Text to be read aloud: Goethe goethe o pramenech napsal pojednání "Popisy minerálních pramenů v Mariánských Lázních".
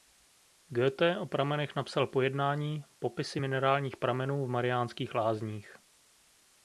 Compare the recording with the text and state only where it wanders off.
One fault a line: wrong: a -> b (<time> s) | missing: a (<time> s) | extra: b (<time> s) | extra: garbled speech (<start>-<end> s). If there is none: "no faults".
missing: goethe (1.2 s)